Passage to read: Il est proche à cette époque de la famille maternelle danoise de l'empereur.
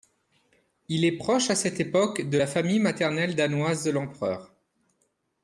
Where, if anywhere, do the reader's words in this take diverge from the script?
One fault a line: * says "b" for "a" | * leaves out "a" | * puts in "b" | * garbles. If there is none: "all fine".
all fine